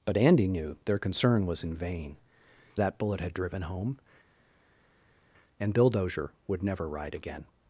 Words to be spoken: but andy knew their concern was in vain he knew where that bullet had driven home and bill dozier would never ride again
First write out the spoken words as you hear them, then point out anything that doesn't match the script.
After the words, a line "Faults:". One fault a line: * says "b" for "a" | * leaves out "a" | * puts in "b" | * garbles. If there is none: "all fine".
but andy knew their concern was in vain that bullet had driven home and bill dozier would never ride again
Faults:
* leaves out "he knew where"